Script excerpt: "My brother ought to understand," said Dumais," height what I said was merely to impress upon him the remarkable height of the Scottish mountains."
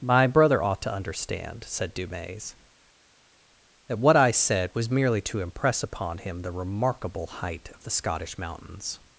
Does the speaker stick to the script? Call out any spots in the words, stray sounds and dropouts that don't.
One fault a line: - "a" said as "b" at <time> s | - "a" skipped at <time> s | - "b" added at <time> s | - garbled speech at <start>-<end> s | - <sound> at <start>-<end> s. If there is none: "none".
- "height" said as "that" at 3.9 s